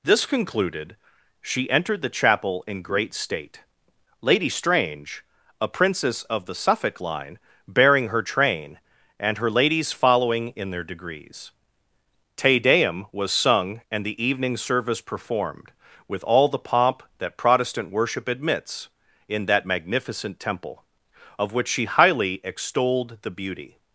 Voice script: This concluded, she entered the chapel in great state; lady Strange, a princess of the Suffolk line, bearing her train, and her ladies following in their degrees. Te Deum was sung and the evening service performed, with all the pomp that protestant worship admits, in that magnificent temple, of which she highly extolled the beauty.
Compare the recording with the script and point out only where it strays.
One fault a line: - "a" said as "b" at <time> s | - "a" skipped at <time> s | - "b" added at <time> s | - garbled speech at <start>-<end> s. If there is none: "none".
none